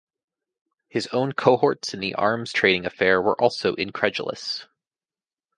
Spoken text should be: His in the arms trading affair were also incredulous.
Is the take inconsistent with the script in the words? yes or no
yes